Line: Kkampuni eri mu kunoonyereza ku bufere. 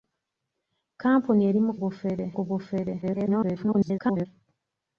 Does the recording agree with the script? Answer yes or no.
no